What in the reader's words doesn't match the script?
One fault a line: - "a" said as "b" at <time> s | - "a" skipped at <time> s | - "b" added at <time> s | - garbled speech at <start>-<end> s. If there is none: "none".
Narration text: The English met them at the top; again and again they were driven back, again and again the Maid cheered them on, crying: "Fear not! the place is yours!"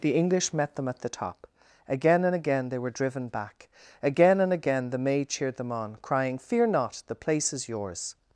none